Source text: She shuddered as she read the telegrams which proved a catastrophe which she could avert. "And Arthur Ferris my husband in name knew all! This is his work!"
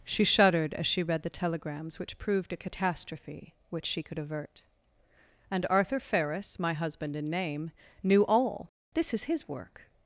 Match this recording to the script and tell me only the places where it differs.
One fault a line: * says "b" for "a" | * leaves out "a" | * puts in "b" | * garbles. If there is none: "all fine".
all fine